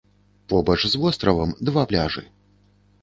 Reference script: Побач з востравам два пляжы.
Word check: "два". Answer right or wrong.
right